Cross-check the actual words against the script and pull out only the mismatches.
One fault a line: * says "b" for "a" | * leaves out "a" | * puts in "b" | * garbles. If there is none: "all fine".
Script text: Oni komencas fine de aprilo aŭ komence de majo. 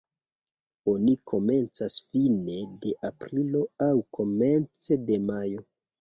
all fine